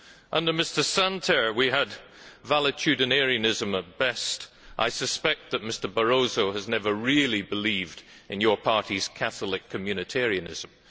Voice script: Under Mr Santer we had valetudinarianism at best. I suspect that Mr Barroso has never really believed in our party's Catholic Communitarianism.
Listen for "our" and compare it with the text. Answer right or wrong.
wrong